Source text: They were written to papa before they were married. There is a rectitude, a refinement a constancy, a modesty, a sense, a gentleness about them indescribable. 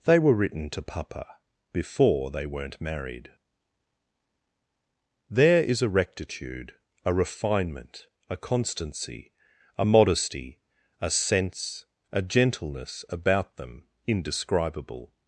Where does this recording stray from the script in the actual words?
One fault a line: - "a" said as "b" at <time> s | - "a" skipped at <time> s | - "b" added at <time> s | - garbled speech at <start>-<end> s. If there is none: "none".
- "were" said as "weren't" at 2.5 s